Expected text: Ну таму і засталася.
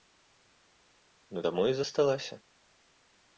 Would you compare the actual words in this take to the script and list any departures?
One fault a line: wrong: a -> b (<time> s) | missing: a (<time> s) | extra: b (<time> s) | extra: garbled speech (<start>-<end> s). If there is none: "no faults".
no faults